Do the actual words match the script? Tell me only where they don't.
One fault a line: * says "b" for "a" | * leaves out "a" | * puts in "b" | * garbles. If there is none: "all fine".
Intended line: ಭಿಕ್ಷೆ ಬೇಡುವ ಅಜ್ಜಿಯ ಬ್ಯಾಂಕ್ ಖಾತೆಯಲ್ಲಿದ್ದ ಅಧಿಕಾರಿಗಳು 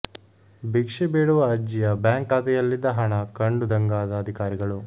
* puts in "ಹಣ ಕಂಡು ದಂಗಾದ"